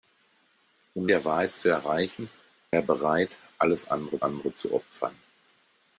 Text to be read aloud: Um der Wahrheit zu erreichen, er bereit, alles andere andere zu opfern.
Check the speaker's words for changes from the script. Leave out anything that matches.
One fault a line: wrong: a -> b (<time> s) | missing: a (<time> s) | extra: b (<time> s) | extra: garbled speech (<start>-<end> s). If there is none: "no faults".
no faults